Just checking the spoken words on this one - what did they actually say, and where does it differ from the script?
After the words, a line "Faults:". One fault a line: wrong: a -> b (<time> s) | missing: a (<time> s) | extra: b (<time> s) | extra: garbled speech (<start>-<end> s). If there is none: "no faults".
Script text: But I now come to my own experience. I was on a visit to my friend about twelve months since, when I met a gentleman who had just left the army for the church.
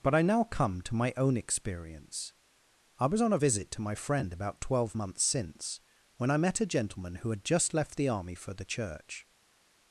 But I now come to my own experience. I was on a visit to my friend about twelve months since, when I met a gentleman who had just left the army for the church.
Faults:
no faults